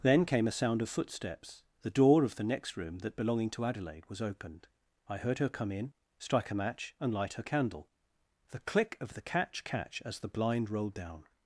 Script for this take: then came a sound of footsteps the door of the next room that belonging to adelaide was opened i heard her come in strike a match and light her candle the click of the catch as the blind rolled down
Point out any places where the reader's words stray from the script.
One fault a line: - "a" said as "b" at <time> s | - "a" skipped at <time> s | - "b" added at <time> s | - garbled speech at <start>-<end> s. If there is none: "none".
- "catch" added at 9.6 s